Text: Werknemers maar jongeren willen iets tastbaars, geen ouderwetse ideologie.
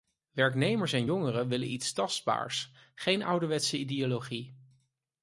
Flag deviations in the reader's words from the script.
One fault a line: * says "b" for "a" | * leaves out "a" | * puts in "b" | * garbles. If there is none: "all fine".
* says "en" for "maar"